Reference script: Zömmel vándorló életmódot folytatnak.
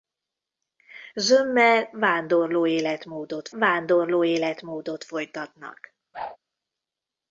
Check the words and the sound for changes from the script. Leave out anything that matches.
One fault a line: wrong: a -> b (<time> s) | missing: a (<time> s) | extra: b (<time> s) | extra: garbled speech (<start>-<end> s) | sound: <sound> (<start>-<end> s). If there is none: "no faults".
extra: vándorló életmódot (3.5 s)
sound: whoosh (6.1-6.4 s)